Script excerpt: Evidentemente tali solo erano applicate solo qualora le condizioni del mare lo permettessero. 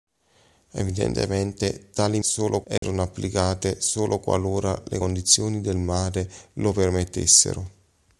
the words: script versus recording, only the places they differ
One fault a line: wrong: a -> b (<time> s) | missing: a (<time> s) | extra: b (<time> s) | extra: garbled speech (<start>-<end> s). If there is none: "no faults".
no faults